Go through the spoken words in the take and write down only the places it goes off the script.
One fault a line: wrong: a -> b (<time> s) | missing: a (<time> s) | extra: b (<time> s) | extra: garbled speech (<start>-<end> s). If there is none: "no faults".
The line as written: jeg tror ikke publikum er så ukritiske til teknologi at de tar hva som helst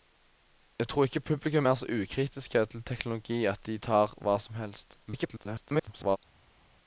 extra: garbled speech (5.1-6.2 s)